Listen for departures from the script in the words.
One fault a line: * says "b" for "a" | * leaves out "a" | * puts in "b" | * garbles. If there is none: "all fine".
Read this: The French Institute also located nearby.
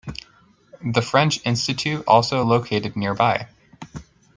all fine